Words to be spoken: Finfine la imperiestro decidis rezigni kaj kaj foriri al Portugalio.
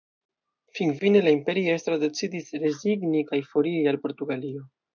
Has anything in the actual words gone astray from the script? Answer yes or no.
yes